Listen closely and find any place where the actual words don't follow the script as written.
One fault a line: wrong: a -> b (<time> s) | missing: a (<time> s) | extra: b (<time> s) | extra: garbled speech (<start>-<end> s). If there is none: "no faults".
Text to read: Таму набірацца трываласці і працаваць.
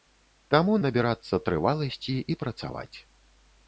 no faults